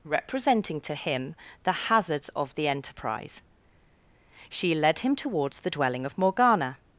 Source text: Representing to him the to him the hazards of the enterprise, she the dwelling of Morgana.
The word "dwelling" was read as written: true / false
true